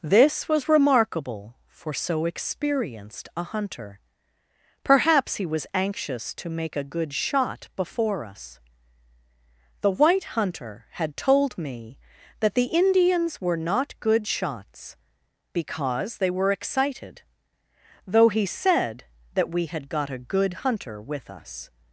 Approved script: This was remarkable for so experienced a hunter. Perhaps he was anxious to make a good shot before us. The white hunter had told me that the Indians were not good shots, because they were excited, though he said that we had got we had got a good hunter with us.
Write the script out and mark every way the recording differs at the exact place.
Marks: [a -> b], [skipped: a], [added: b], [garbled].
This was remarkable for so experienced a hunter. Perhaps he was anxious to make a good shot before us. The white hunter had told me that the Indians were not good shots, because they were excited, though he said that we had got [skipped: we had got] a good hunter with us.